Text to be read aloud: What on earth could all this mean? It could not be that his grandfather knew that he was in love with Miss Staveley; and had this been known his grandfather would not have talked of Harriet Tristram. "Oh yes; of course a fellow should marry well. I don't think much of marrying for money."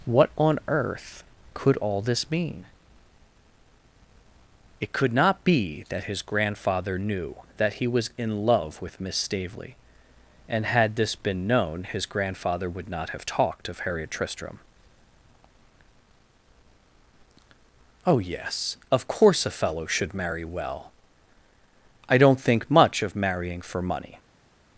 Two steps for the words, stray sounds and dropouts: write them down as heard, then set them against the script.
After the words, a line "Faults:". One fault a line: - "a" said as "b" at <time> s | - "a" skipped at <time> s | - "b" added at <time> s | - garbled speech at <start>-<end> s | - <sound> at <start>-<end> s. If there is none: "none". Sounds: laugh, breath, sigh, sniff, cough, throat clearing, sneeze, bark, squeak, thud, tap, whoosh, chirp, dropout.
What on earth could all this mean? It could not be that his grandfather knew that he was in love with Miss Staveley; and had this been known his grandfather would not have talked of Harriet Tristram. "Oh yes; of course a fellow should marry well. I don't think much of marrying for money."
Faults:
none